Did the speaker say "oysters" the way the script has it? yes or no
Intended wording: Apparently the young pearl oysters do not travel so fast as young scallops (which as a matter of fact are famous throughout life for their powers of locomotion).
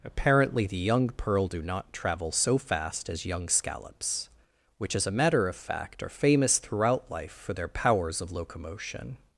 no